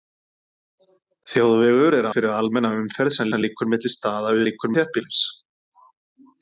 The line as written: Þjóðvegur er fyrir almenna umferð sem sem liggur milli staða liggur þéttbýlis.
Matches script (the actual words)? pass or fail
pass